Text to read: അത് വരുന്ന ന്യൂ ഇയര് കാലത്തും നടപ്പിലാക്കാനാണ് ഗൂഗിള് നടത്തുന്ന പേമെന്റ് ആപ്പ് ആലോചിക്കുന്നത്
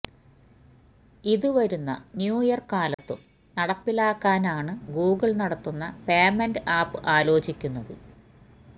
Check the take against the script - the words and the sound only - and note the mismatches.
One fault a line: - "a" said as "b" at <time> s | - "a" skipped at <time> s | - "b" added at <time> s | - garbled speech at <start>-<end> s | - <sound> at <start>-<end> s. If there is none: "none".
- "അത്" said as "ഇത്" at 1.2 s
- dropout at 2.9-3.0 s